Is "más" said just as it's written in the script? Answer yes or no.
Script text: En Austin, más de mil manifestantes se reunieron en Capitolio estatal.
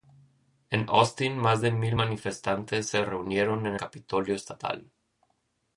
yes